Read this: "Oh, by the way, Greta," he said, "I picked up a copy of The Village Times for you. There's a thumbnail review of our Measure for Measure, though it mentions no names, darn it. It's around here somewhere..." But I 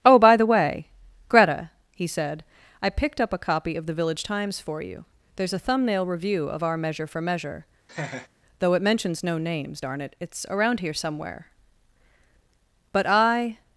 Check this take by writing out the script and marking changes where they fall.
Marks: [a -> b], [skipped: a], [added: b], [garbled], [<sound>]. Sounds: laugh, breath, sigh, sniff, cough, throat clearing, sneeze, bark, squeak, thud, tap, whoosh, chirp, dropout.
"Oh, by the way, Greta," he said, "I picked up a copy of The Village Times for you. There's a thumbnail review of our Measure for Measure, [laugh] though it mentions no names, darn it. It's around here somewhere..." But I